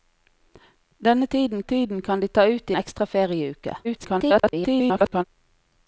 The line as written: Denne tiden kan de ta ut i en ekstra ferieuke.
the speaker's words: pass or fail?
fail